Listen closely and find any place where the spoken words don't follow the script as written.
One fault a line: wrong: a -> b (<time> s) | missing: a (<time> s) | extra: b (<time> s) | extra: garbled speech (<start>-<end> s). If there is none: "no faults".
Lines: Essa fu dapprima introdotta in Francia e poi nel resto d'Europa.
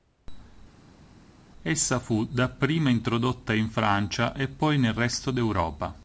no faults